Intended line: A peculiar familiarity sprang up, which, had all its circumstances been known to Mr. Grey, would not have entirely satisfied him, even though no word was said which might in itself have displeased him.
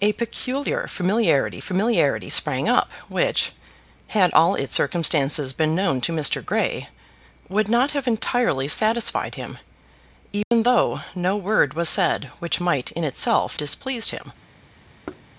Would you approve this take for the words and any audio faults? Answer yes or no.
no